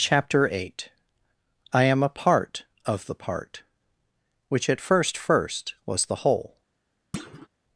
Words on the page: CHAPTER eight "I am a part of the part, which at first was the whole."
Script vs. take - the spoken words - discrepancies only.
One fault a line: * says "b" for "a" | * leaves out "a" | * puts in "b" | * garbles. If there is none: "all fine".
* puts in "first"